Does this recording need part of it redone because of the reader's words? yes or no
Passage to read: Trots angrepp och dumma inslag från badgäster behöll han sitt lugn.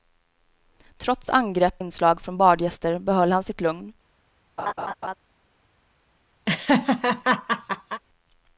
yes